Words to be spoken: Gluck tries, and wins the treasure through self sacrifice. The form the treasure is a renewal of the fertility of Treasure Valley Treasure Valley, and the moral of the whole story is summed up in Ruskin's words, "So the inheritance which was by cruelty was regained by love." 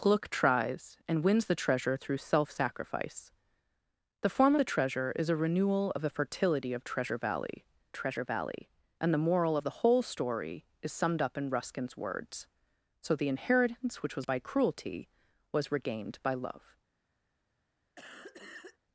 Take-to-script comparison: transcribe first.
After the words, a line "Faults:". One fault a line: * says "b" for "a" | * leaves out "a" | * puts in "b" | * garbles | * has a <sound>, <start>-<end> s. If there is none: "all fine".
Gluck tries, and wins the treasure through self sacrifice. The form the treasure is a renewal of the fertility of Treasure Valley Treasure Valley, and the moral of the whole story is summed up in Ruskin's words, "So the inheritance which was by cruelty was regained by love."
Faults:
* has a cough, 18.0-18.8 s